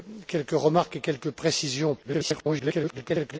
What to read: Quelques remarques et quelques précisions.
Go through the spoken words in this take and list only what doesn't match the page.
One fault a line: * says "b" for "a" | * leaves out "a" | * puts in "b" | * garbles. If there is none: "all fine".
* garbles